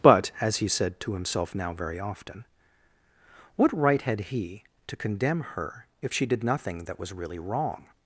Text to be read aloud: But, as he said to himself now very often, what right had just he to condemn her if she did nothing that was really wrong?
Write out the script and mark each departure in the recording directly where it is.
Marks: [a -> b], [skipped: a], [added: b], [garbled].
But, as he said to himself now very often, what right had [skipped: just] he to condemn her if she did nothing that was really wrong?